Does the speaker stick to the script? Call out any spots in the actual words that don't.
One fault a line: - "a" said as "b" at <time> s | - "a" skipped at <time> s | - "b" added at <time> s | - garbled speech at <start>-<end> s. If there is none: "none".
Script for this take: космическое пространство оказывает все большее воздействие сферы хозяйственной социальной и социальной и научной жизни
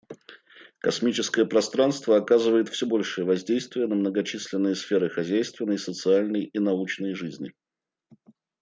- "на многочисленные" added at 3.9 s
- "социальной и" skipped at 6.6 s